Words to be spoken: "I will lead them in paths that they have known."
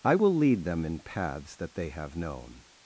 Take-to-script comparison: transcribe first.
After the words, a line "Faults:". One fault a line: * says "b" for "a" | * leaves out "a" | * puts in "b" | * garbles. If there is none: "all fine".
"I will lead them in paths that they have known."
Faults:
all fine